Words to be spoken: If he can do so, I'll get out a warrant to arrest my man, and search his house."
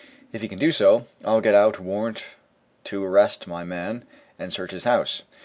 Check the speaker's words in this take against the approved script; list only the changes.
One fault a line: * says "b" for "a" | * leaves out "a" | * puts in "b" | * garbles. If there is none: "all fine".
all fine